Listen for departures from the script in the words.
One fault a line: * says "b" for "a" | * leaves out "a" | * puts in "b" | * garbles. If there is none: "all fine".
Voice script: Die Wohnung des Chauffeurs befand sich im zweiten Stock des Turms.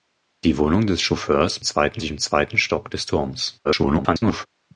* says "zweiten" for "befand"
* garbles